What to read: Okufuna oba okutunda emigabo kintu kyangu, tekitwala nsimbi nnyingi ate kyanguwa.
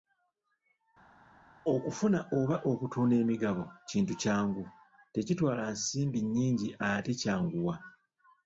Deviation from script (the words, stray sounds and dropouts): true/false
false